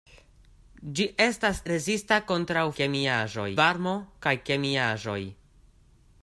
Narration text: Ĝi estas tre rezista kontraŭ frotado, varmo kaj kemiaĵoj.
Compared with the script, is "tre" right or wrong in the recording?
wrong